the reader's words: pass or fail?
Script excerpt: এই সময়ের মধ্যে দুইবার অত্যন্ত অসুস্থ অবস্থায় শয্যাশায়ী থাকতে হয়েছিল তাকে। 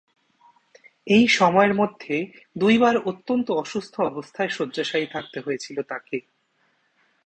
pass